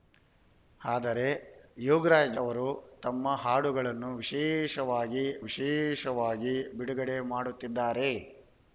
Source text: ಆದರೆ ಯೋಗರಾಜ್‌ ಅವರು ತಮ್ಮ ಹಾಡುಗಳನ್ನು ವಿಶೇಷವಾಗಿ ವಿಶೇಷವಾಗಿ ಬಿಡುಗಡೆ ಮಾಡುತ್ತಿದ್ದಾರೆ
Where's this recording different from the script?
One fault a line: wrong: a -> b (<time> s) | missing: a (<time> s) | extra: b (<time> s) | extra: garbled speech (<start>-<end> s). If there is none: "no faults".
no faults